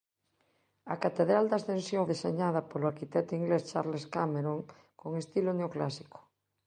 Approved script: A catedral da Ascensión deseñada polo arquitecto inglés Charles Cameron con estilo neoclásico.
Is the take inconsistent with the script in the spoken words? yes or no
no